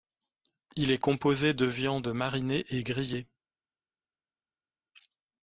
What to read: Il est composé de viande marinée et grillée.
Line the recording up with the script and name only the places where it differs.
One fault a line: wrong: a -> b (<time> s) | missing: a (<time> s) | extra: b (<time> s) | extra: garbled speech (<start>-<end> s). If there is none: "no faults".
no faults